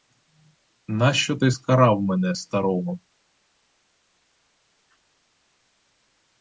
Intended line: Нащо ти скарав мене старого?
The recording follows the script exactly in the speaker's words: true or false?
true